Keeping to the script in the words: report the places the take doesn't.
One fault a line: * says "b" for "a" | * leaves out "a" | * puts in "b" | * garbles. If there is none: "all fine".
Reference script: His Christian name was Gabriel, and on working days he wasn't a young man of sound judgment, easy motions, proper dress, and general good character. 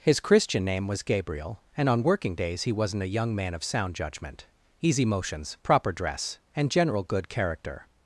all fine